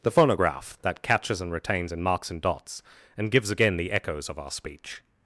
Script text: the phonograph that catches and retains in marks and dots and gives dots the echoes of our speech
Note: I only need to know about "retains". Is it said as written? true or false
true